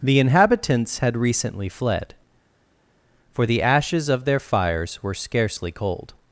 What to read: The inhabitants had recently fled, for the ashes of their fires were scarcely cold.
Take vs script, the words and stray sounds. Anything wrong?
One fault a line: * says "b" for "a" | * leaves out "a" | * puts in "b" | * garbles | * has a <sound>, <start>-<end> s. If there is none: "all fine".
all fine